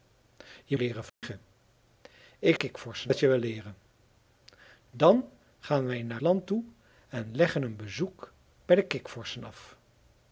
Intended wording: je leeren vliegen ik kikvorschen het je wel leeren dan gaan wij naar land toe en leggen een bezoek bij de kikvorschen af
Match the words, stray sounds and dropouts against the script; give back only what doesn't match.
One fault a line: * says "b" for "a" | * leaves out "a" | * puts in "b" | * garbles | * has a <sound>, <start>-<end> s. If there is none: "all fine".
* has a dropout, 1.1-1.2 s